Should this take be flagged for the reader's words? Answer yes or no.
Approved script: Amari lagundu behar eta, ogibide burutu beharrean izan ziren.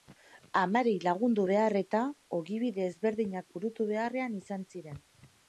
yes